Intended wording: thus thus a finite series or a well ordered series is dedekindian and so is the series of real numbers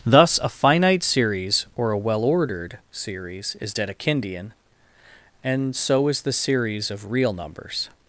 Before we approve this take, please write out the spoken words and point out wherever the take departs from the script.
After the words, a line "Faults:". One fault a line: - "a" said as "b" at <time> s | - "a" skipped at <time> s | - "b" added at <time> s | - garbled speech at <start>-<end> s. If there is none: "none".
thus a finite series or a well ordered series is dedekindian and so is the series of real numbers
Faults:
- "thus" skipped at 0.4 s